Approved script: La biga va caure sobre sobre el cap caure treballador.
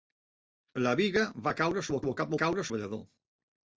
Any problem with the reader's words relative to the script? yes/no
no